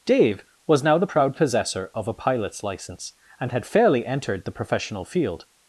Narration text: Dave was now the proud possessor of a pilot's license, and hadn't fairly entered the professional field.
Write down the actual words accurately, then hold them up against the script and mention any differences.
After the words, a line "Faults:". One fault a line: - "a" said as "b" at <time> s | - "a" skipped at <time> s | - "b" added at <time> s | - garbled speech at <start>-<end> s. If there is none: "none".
Dave was now the proud possessor of a pilot's license, and had fairly entered the professional field.
Faults:
- "hadn't" said as "had" at 3.5 s